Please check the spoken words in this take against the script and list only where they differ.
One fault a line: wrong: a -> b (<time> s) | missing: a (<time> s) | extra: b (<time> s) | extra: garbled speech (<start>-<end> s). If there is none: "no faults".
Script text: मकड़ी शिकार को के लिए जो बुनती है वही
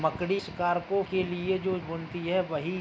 no faults